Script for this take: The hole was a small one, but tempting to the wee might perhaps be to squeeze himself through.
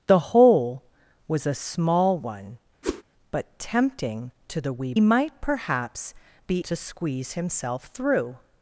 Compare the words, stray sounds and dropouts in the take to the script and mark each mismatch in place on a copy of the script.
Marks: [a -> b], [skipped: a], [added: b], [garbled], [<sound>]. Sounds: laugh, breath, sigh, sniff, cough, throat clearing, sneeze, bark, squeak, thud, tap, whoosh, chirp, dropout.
The hole was a small one, [whoosh] but tempting to the wee might perhaps be to squeeze himself through.